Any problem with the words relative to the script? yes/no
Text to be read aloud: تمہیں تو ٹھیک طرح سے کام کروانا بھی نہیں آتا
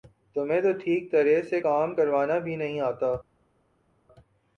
no